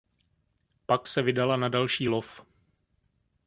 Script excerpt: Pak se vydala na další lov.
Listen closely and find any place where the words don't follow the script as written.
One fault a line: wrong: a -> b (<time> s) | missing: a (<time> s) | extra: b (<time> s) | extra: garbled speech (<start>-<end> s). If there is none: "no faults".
no faults